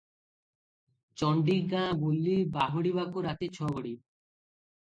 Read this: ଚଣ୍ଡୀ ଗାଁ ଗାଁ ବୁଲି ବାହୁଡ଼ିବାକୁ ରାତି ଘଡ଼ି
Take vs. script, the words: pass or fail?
fail